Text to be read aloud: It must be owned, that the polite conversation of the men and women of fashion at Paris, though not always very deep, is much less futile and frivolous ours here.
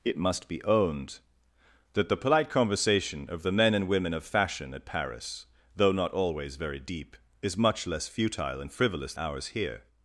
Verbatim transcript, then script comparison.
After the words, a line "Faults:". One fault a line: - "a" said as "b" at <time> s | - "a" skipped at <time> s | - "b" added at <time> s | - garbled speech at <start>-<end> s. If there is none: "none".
It must be owned, that the polite conversation of the men and women of fashion at Paris, though not always very deep, is much less futile and frivolous ours here.
Faults:
none